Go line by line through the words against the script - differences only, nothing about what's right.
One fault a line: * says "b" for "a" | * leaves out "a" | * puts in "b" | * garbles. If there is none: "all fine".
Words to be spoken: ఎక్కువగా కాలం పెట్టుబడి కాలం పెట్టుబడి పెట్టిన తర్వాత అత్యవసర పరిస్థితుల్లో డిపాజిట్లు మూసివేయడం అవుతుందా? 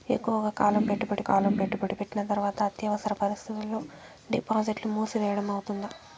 all fine